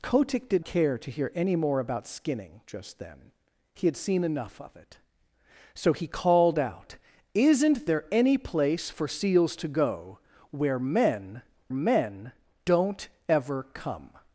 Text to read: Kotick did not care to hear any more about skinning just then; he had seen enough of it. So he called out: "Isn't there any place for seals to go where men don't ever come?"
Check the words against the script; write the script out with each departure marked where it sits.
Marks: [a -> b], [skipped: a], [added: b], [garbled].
Kotick did [skipped: not] care to hear any more about skinning just then; he had seen enough of it. So he called out: "Isn't there any place for seals to go where men [added: men] don't ever come?"